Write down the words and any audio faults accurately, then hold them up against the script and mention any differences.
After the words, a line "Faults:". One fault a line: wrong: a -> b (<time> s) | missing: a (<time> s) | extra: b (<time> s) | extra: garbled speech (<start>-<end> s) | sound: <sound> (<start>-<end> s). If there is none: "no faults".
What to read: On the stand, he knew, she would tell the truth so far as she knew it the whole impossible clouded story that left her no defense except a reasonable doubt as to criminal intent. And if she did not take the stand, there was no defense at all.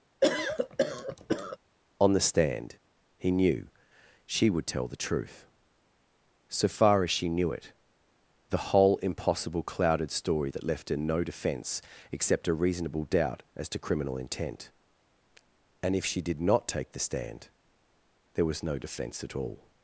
On the stand, he knew, she would tell the truth so far as she knew it the whole impossible clouded story that left her no defense except a reasonable doubt as to criminal intent. And if she did not take the stand, there was no defense at all.
Faults:
sound: cough (0.2-1.6 s)